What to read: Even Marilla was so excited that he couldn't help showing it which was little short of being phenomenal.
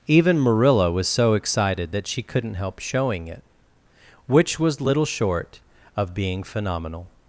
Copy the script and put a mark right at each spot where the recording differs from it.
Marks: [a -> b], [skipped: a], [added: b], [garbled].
Even Marilla was so excited that [he -> she] couldn't help showing it which was little short of being phenomenal.